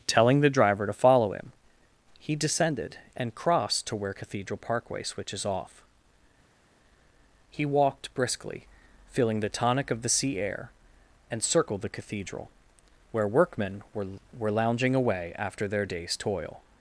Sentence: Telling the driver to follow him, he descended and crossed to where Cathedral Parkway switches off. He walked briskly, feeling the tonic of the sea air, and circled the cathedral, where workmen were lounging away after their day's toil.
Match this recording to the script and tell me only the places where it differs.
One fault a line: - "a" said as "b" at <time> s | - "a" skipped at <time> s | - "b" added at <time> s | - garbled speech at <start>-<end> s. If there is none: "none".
- "were" added at 14.4 s